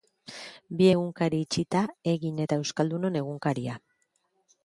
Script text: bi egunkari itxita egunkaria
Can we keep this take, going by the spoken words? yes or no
no